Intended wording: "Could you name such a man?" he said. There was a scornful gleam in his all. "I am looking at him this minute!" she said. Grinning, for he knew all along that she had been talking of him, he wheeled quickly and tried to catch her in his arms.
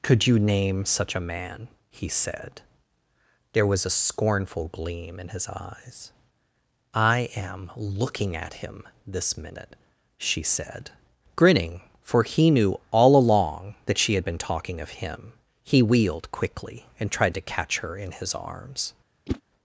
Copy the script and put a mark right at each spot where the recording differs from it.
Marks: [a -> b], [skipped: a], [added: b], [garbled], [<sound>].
"Could you name such a man?" he said. There was a scornful gleam in his [all. -> eyes] "I am looking at him this minute!" she said. Grinning, for he knew all along that she had been talking of him, he wheeled quickly and tried to catch her in his arms. [whoosh]